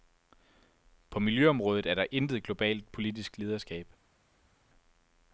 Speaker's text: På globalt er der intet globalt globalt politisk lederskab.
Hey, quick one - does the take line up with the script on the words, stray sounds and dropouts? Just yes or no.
no